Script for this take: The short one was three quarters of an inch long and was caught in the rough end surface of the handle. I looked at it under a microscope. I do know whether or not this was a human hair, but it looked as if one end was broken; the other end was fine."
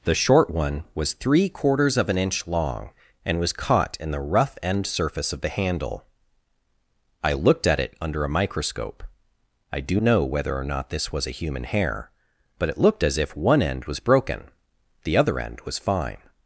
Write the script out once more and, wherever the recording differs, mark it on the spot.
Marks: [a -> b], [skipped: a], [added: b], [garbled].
The short one was three quarters of an inch long and was caught in the rough end surface of the handle. I looked at it under a microscope. I do know whether or not this was a human hair, but it looked as if one end was broken; the other end was fine."